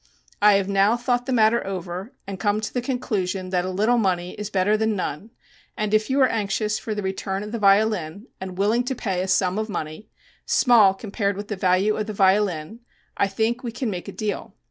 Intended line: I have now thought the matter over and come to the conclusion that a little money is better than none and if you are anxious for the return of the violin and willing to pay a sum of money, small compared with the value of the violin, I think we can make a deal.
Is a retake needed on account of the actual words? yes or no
no